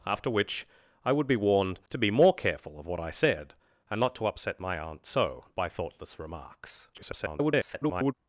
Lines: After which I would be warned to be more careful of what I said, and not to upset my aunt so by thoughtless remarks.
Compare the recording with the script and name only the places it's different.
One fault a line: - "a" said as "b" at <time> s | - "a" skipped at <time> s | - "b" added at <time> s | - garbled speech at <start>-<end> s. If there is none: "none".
- garbled speech at 6.9-8.1 s